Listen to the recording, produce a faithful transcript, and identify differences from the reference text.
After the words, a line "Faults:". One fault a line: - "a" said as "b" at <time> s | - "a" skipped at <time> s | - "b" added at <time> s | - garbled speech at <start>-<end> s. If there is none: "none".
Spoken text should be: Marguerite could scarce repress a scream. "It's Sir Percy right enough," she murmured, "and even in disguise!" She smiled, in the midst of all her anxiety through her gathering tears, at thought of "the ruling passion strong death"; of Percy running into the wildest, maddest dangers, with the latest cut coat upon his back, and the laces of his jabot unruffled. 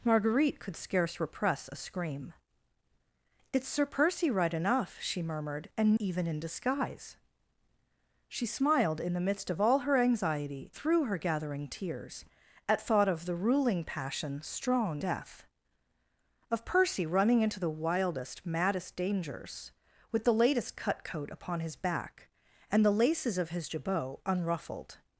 Marguerite could scarce repress a scream. "It's Sir Percy right enough," she murmured, "and even in disguise!" She smiled, in the midst of all her anxiety through her gathering tears, at thought of "the ruling passion strong death"; of Percy running into the wildest, maddest dangers, with the latest cut coat upon his back, and the laces of his jabot unruffled.
Faults:
none